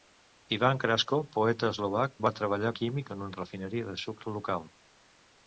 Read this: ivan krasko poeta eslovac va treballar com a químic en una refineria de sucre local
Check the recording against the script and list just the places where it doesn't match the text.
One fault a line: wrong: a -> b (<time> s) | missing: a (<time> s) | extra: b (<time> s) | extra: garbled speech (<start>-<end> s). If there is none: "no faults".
missing: com (2.7 s)